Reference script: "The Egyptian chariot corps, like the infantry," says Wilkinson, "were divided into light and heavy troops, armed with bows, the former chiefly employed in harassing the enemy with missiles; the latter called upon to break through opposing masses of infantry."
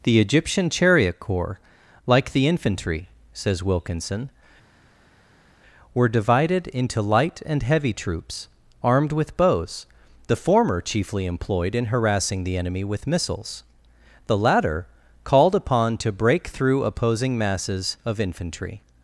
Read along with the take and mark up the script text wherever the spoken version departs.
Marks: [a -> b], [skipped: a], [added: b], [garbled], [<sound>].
"The Egyptian chariot corps, like the infantry," says Wilkinson, "were divided into light and heavy troops, armed with bows, the former chiefly employed in harassing the enemy with missiles; the latter called upon to break through opposing masses of infantry."